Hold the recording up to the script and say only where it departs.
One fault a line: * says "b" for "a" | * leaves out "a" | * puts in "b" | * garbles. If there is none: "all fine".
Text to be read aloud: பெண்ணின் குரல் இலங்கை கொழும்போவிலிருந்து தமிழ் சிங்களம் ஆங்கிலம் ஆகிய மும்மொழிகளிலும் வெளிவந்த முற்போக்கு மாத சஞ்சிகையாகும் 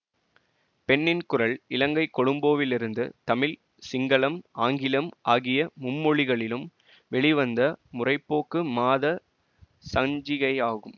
all fine